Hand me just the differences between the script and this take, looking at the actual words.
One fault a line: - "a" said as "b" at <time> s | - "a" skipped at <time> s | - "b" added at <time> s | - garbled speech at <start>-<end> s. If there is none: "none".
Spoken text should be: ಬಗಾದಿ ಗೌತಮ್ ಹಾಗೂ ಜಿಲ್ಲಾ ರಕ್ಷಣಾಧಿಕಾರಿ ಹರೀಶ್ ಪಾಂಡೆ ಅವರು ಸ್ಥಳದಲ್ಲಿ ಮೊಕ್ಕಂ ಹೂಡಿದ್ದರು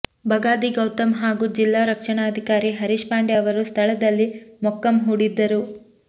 none